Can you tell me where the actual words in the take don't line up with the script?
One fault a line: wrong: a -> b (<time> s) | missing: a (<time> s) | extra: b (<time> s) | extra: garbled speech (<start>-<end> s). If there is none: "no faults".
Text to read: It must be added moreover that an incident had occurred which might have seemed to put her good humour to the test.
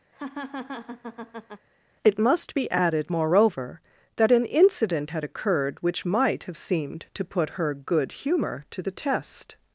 no faults